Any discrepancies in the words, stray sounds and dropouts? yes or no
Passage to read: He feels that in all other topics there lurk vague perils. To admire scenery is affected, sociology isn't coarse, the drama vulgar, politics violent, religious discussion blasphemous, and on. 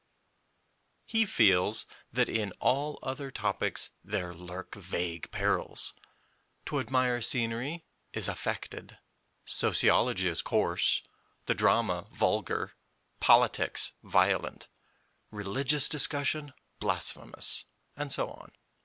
yes